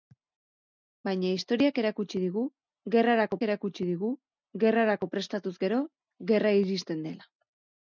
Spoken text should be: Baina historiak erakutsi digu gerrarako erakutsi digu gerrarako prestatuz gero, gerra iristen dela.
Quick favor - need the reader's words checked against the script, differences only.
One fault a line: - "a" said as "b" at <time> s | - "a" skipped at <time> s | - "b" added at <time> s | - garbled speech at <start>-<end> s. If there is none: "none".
none